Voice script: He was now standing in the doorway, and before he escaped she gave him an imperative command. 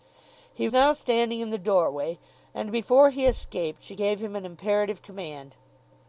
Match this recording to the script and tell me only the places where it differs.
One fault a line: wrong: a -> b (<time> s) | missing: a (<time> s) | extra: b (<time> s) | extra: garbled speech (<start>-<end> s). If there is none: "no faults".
missing: was (0.7 s)